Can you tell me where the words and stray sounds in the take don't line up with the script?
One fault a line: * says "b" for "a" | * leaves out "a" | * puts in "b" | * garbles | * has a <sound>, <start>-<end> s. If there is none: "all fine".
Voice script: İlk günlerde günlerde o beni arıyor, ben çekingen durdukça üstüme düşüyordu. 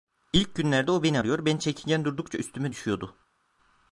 * leaves out "günlerde"